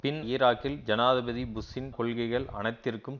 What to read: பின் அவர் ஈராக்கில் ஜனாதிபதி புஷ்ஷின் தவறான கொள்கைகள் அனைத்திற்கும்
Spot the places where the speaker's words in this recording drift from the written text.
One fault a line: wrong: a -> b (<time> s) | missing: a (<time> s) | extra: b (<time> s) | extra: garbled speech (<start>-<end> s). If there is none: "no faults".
missing: அவர் (0.2 s)
missing: தவறான (1.9 s)